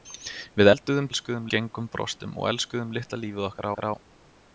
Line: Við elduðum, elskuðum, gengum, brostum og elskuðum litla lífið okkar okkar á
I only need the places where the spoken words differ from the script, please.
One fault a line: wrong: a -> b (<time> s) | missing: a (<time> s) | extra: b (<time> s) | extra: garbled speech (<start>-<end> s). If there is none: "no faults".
no faults